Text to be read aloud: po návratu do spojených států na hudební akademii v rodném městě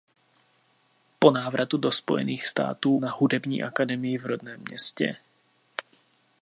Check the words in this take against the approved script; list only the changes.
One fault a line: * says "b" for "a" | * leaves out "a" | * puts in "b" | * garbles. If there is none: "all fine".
all fine